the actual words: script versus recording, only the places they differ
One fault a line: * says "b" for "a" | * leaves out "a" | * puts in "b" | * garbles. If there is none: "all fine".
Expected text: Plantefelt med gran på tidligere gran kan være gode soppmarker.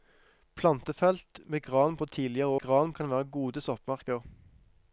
all fine